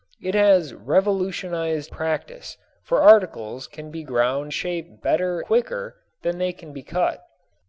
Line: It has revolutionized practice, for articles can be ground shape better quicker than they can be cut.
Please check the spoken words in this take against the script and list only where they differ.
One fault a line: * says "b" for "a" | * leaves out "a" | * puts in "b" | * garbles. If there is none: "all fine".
all fine